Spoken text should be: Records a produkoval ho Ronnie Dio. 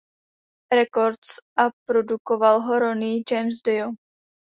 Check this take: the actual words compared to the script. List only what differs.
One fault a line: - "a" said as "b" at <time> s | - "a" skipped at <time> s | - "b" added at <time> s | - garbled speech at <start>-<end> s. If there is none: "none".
- "James" added at 3.3 s